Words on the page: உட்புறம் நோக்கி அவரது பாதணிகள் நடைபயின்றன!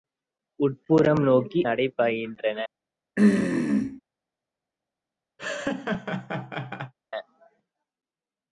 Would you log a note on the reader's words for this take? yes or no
yes